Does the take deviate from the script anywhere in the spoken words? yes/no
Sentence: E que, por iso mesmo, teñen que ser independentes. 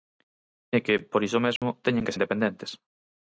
yes